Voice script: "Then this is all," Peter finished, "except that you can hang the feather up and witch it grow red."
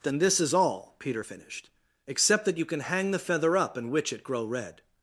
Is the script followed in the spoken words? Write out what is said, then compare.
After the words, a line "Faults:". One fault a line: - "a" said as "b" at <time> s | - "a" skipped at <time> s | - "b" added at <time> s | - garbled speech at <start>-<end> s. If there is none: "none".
"Then this is all," Peter finished, "except that you can hang the feather up and witch it grow red."
Faults:
none